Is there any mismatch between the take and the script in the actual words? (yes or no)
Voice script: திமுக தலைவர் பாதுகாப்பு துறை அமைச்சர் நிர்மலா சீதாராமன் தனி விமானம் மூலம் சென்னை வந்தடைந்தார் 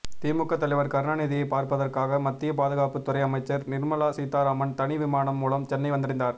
yes